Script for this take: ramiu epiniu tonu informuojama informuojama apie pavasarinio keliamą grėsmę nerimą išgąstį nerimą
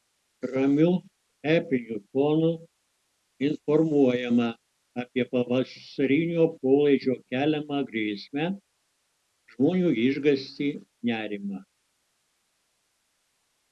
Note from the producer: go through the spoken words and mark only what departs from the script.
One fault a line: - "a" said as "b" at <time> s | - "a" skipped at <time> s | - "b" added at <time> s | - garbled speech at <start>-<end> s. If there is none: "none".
- "informuojama" skipped at 4.5 s
- "polaidžio" added at 6.6 s
- "nerimą" said as "žmonių" at 9.6 s